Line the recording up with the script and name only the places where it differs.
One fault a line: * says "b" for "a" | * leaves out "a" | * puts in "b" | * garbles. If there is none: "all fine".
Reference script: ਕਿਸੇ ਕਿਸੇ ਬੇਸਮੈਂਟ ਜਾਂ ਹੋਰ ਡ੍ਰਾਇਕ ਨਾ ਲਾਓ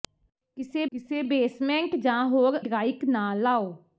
all fine